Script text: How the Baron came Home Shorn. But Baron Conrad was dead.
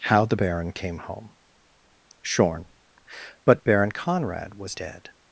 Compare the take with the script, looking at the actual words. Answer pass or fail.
pass